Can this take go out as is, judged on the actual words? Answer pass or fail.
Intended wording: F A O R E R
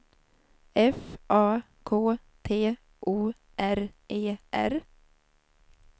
fail